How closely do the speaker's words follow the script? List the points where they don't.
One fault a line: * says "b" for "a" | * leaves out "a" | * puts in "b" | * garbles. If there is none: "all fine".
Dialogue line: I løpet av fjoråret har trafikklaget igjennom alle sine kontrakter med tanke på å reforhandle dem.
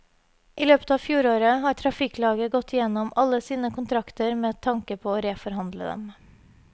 * puts in "gått"